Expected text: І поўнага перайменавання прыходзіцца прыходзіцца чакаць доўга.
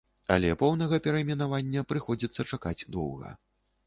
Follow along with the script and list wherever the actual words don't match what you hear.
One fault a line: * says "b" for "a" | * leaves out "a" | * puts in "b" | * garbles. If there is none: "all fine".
* says "Але" for "І"
* leaves out "прыходзіцца"